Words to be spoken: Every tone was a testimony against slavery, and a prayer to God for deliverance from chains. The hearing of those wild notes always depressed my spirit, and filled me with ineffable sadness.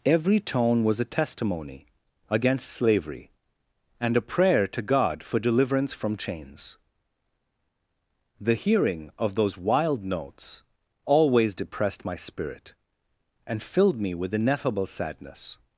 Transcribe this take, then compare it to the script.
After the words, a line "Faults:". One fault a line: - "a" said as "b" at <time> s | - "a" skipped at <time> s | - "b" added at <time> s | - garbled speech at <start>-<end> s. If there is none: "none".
Every tone was a testimony against slavery, and a prayer to God for deliverance from chains. The hearing of those wild notes always depressed my spirit, and filled me with ineffable sadness.
Faults:
none